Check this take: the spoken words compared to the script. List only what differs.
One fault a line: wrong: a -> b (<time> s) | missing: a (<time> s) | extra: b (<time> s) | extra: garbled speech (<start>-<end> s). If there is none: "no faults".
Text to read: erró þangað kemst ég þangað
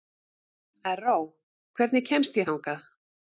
wrong: þangað -> hvernig (1.8 s)